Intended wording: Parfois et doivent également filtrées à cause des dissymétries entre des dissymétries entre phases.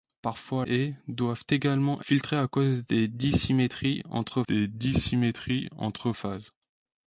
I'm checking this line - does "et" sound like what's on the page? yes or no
yes